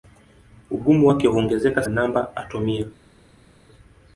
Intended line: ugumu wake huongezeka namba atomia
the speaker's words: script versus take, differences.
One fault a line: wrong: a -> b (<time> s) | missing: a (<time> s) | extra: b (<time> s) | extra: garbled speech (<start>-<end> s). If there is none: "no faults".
no faults